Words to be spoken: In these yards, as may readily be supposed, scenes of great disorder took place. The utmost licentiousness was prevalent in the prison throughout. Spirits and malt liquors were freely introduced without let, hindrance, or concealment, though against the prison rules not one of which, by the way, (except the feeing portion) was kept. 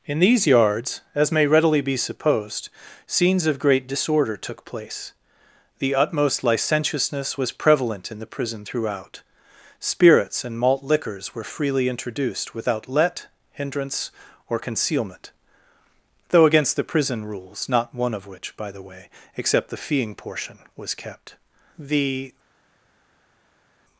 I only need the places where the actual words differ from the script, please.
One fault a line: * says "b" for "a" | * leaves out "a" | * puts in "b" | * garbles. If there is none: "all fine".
* puts in "The"